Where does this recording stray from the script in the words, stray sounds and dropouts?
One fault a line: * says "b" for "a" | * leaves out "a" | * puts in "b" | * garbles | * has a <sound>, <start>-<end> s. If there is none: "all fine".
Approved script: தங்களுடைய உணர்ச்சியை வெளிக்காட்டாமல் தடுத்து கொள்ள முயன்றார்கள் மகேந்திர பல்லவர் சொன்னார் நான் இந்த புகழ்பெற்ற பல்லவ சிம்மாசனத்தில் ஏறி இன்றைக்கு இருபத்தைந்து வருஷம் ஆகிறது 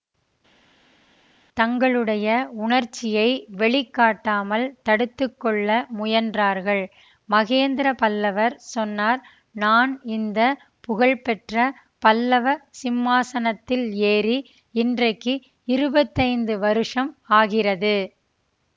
all fine